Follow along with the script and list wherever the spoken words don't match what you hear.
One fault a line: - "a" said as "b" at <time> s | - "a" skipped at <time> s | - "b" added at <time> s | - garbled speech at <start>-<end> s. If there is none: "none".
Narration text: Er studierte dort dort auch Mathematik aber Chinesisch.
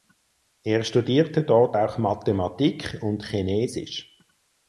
- "dort" skipped at 1.8 s
- "aber" said as "und" at 3.0 s